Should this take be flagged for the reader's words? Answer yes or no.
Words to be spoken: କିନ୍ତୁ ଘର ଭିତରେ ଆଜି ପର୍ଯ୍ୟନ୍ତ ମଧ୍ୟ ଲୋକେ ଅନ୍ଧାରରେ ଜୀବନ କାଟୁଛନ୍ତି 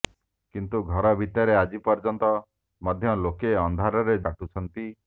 yes